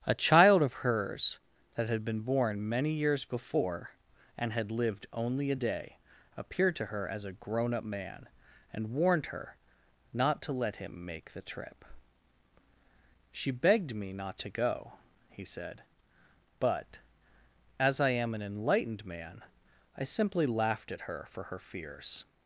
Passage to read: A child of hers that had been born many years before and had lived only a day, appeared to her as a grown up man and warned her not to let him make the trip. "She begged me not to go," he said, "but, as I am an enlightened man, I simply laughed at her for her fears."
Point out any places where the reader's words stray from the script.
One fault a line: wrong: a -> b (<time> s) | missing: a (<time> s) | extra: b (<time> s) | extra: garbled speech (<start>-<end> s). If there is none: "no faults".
no faults